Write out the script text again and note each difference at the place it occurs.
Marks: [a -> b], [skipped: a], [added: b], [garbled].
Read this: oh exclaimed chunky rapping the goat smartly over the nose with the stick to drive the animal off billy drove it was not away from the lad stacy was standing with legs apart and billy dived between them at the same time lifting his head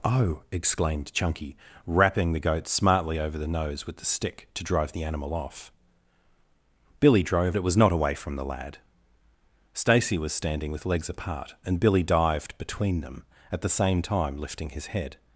oh exclaimed chunky rapping the goat smartly over the nose with the stick to drive the animal off billy drove it was not away from the lad stacy was standing with legs apart and billy dived between them at the same time lifting his head